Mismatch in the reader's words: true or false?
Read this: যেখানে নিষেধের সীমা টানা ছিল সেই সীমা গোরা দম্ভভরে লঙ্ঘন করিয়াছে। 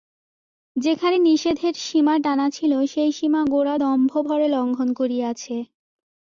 false